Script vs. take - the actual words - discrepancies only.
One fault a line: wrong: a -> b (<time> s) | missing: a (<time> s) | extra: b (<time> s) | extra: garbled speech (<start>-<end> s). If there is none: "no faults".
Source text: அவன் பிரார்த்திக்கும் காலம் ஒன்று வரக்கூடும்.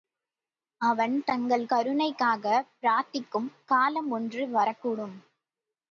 extra: தங்கள் கருணைக்காகப் (1.2 s)